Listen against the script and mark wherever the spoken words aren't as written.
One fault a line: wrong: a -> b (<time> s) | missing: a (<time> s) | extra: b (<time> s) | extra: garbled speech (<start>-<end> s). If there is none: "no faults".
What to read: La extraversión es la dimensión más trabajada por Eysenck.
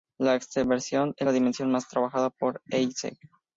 no faults